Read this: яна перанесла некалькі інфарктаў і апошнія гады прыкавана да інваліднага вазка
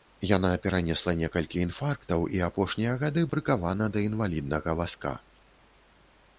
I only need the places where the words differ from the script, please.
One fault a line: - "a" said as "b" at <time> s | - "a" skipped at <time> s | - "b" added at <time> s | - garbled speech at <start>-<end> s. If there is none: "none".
none